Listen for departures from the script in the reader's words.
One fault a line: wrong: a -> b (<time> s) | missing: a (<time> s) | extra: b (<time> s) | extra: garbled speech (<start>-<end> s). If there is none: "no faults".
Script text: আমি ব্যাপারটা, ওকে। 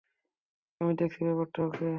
extra: দেখছি (1.0 s)